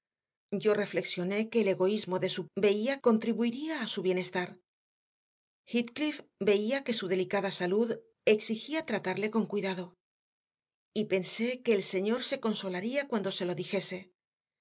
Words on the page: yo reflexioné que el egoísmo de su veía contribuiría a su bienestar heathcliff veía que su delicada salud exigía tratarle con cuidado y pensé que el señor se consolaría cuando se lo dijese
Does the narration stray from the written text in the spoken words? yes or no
no